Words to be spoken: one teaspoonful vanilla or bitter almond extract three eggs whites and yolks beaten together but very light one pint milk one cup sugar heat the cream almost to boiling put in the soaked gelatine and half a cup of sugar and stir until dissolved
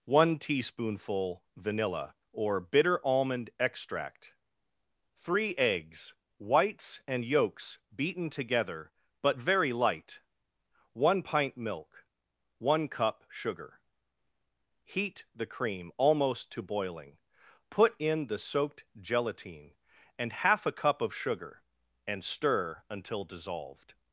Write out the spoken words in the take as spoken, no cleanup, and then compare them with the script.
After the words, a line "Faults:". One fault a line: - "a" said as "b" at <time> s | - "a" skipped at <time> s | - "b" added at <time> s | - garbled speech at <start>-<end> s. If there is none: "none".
one teaspoonful vanilla or bitter almond extract three eggs whites and yolks beaten together but very light one pint milk one cup sugar heat the cream almost to boiling put in the soaked gelatine and half a cup of sugar and stir until dissolved
Faults:
none